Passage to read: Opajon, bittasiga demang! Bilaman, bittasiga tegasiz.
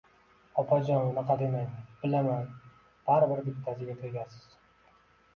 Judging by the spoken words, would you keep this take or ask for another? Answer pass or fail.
fail